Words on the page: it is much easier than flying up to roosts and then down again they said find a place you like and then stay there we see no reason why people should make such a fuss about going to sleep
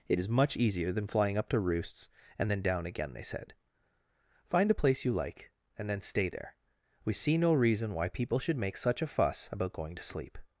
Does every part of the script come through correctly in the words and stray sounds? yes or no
yes